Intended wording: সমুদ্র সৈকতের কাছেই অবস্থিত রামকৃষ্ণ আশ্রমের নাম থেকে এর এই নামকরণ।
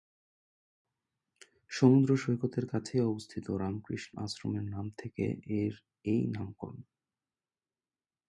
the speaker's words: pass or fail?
pass